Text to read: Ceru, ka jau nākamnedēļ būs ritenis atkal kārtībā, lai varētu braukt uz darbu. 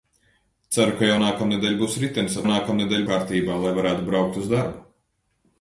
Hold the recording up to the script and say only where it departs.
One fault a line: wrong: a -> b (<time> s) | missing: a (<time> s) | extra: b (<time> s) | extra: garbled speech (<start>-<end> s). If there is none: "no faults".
wrong: atkal -> nākamnedēļ (2.5 s)